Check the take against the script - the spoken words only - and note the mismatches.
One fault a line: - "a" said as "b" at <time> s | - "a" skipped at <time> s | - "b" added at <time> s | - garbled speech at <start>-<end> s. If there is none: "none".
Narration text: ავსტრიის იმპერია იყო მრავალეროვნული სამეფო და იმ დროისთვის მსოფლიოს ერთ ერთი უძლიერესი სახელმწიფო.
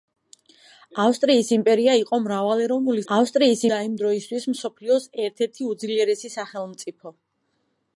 - "სამეფო" said as "ავსტრიის" at 3.1 s